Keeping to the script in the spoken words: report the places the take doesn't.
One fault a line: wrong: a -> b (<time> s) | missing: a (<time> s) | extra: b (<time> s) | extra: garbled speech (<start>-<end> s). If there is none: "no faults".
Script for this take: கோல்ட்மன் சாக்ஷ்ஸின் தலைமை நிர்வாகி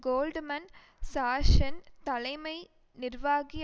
no faults